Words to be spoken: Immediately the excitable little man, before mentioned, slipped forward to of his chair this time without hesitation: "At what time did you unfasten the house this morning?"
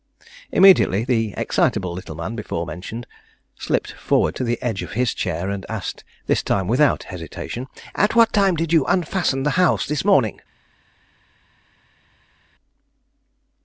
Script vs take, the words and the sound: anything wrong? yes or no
yes